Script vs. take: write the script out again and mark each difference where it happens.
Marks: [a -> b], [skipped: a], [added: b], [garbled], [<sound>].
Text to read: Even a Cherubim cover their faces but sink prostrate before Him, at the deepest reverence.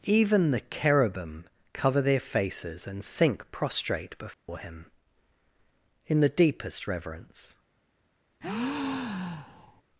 Even [a -> the] Cherubim cover their faces [but -> and] sink prostrate before [dropout] Him, [at -> in] the deepest reverence. [breath]